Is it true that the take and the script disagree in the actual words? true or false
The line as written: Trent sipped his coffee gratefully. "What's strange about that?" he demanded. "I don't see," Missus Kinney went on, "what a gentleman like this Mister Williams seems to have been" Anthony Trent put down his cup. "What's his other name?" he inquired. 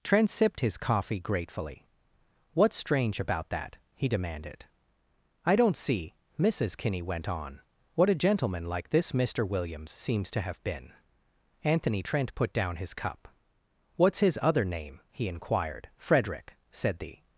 true